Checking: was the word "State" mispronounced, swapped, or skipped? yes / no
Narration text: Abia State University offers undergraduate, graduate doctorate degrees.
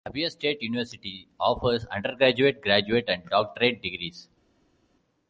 no